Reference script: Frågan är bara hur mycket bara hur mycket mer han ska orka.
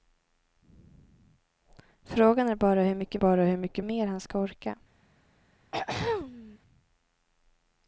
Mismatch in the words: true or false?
false